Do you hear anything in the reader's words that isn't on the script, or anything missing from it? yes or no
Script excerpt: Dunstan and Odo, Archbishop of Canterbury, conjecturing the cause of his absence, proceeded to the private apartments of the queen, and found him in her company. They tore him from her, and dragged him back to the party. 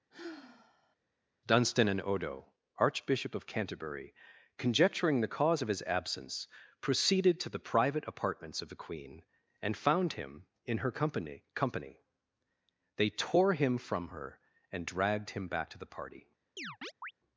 yes